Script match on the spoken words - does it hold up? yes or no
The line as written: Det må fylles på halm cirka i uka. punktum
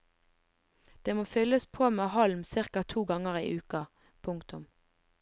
no